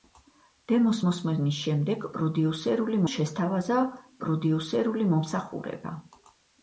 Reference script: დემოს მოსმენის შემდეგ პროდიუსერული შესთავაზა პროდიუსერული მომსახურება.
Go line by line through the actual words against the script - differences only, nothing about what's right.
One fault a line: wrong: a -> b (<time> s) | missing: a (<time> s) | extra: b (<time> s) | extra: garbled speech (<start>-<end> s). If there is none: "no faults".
no faults